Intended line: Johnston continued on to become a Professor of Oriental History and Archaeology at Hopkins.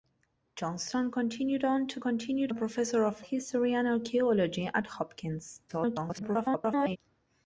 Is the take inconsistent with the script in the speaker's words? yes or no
yes